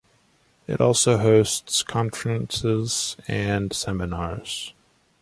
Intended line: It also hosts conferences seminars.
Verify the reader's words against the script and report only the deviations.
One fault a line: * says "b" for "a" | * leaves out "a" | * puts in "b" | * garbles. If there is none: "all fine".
* puts in "and"